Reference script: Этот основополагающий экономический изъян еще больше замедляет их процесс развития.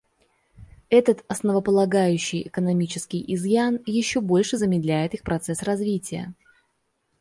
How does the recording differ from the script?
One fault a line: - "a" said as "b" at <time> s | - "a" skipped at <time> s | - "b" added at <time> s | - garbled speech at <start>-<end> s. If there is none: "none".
none